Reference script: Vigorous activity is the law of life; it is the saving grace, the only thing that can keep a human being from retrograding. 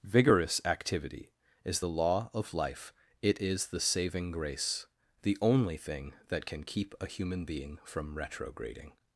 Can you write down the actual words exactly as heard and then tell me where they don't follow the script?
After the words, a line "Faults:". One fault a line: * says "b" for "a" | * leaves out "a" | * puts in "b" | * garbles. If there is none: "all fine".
Vigorous activity is the law of life; it is the saving grace, the only thing that can keep a human being from retrograding.
Faults:
all fine